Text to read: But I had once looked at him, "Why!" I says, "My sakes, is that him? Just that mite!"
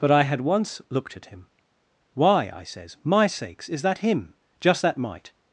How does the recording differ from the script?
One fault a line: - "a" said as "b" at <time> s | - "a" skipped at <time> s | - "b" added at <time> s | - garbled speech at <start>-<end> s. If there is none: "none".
none